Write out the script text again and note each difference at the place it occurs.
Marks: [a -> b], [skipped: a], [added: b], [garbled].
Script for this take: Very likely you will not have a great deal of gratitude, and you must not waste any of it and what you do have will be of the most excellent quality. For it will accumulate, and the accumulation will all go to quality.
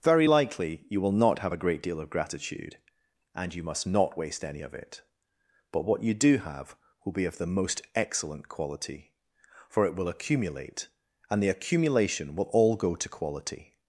Very likely you will not have a great deal of gratitude, and you must not waste any of it [and -> but] what you do have will be of the most excellent quality. For it will accumulate, and the accumulation will all go to quality.